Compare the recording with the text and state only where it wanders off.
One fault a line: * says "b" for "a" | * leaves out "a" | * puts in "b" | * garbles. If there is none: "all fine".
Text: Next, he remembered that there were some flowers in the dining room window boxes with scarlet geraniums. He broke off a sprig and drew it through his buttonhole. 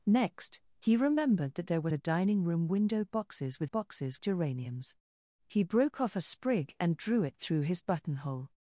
* leaves out "some flowers in"
* says "boxes" for "scarlet"